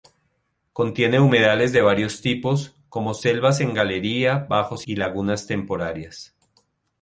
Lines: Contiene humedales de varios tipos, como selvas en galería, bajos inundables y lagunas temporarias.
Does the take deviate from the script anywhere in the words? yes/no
yes